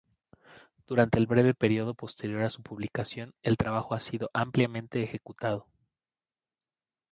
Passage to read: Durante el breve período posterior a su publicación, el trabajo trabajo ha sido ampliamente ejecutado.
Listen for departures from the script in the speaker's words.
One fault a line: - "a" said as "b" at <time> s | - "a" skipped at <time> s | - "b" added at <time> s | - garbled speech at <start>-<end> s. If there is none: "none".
- "trabajo" skipped at 3.9 s